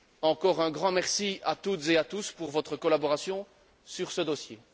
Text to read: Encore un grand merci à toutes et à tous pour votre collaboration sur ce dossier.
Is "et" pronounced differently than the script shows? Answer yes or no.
no